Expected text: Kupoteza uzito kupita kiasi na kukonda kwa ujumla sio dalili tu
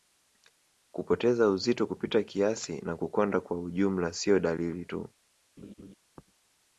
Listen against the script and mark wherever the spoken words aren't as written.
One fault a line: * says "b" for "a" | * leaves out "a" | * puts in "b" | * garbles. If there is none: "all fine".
all fine